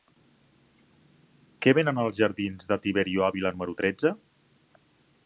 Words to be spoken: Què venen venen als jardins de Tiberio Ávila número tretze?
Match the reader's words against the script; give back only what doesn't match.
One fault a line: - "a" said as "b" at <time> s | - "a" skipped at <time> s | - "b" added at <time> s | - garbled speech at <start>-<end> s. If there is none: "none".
- "venen" skipped at 2.0 s